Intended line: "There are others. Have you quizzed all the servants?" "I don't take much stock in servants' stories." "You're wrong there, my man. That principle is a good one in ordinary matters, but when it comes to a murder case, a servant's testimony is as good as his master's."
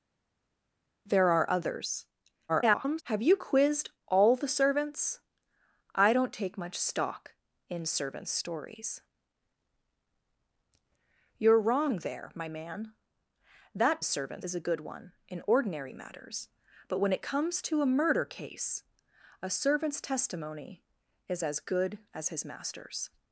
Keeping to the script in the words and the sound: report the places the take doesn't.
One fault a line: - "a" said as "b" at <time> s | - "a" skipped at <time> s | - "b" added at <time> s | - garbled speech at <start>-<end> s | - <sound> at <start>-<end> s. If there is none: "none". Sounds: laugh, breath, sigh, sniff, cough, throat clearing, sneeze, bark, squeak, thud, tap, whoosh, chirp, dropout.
- garbled speech at 2.5-3.0 s
- "principle" said as "servants" at 14.0 s